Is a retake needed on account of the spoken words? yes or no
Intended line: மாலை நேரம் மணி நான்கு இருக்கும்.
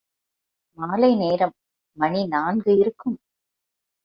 no